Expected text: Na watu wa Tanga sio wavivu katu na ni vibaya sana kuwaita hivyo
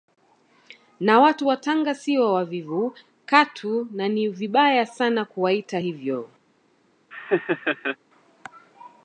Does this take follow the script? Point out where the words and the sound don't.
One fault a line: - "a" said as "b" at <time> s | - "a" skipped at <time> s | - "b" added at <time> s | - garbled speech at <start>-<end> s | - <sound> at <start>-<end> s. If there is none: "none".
- laugh at 7.1-8.0 s